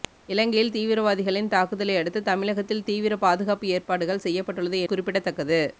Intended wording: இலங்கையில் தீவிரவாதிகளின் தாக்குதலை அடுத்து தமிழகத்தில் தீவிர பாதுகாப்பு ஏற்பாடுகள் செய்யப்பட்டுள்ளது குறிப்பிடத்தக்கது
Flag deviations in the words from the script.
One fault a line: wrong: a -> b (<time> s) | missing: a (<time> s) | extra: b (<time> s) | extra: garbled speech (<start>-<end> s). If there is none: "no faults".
no faults